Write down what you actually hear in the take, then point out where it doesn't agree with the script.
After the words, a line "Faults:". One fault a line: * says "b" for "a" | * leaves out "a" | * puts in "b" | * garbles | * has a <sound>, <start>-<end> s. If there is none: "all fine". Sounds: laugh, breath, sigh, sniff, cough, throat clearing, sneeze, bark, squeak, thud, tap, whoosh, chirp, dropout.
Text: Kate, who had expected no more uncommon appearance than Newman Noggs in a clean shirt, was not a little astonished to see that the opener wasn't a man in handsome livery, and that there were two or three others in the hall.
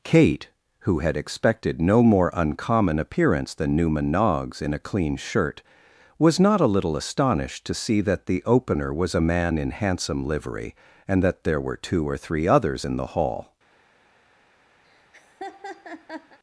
Kate, who had expected no more uncommon appearance than Newman Noggs in a clean shirt, was not a little astonished to see that the opener was a man in handsome livery, and that there were two or three others in the hall.
Faults:
* says "was" for "wasn't"
* has a laugh, 14.8-16.4 s